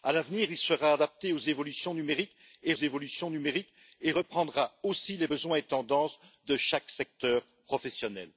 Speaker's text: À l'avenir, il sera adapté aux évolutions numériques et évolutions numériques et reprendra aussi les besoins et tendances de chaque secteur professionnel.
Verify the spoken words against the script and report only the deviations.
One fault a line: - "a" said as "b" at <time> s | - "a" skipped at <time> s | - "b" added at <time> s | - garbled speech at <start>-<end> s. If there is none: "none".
none